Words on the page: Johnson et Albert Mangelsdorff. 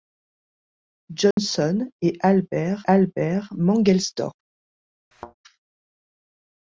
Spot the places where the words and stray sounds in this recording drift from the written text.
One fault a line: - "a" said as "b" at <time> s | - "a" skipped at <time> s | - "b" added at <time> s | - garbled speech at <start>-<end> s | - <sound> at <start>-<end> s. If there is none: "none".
- dropout at 1.3-1.4 s
- "Albert" added at 2.9 s
- thud at 5.1-5.3 s